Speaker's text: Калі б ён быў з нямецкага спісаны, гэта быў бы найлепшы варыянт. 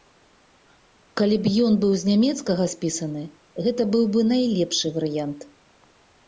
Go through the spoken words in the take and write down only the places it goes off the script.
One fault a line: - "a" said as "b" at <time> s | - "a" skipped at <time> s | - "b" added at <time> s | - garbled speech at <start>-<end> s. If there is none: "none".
none